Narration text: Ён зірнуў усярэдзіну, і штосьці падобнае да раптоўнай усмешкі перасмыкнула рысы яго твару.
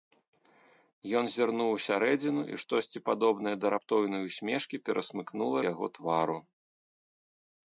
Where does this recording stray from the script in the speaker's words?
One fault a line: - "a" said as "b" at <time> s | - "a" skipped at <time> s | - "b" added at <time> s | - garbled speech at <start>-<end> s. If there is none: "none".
- "рысы" skipped at 5.6 s